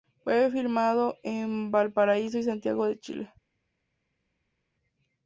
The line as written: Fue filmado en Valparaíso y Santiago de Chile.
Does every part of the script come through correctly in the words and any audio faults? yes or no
yes